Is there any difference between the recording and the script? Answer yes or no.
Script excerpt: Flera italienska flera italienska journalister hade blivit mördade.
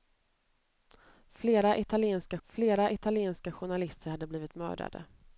no